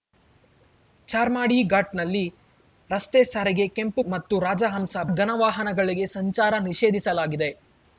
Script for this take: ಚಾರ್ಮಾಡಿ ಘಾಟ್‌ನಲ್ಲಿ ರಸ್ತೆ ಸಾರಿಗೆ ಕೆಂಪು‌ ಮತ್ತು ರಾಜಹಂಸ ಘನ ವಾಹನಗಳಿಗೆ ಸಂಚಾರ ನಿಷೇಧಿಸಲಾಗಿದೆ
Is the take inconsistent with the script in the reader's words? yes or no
no